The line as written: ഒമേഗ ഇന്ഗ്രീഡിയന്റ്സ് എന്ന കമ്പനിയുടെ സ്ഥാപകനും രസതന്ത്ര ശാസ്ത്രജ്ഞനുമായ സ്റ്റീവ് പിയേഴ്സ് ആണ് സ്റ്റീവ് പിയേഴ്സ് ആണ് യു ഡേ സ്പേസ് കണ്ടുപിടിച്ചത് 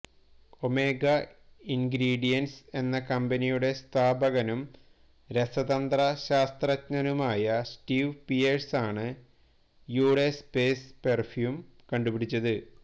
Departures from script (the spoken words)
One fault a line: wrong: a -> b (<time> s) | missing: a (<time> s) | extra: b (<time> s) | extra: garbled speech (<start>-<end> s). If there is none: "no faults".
missing: സ്റ്റീവ് പിയേഴ്സ് ആണ് (9.1 s)
extra: പെര്ഫ്യൂം (11.0 s)